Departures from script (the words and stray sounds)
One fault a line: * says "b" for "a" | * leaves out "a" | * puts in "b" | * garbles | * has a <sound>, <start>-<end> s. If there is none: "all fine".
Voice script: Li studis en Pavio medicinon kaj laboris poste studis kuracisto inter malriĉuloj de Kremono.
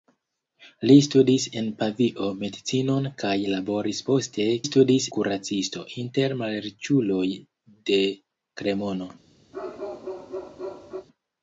* has a bark, 9.5-11.1 s